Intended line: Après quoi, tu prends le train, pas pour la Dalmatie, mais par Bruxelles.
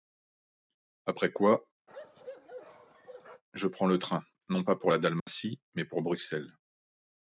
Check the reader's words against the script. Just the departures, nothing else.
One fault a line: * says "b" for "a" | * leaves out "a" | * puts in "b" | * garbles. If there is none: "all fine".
* says "je" for "tu"
* puts in "non"
* says "pour" for "par"